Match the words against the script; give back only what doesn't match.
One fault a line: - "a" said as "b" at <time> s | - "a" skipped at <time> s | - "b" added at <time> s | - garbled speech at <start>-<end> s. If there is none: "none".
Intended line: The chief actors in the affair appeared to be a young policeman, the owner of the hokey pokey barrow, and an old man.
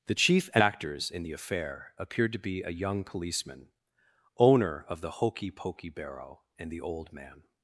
- "the" skipped at 3.7 s
- "an" said as "the" at 6.7 s